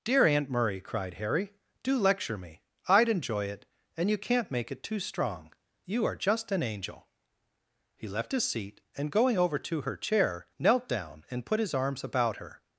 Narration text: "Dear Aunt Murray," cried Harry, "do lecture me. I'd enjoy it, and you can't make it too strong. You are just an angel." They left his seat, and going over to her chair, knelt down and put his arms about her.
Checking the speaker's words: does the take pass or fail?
fail